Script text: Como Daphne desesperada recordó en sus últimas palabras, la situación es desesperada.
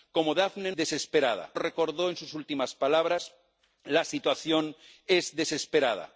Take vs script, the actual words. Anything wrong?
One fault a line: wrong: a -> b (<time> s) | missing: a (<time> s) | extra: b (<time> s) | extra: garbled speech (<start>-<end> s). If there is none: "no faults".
no faults